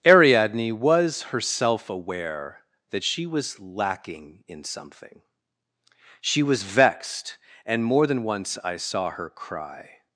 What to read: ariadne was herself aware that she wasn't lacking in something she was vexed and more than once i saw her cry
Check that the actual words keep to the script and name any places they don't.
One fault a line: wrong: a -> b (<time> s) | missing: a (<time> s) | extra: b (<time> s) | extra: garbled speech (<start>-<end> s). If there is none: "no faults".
wrong: wasn't -> was (3.3 s)